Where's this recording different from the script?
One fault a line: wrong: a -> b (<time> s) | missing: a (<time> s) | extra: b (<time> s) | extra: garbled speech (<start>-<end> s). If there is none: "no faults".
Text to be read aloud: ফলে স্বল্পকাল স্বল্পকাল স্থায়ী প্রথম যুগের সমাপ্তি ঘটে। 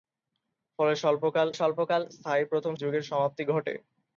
no faults